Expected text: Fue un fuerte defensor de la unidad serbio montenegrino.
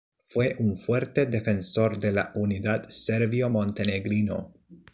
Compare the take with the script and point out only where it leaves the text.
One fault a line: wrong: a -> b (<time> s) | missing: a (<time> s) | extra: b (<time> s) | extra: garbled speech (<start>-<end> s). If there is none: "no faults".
no faults